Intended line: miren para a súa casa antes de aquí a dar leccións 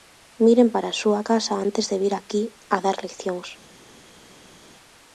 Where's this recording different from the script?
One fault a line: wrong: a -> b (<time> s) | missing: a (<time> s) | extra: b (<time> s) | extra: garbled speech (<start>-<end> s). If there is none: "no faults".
extra: vir (2.0 s)